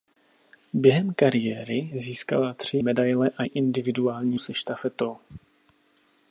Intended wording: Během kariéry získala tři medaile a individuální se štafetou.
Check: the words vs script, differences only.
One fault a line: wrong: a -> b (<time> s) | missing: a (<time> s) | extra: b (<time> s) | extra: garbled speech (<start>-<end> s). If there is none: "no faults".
no faults